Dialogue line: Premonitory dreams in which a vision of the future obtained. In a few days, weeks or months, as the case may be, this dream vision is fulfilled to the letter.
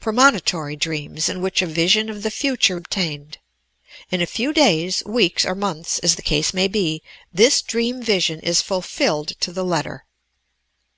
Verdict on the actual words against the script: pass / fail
pass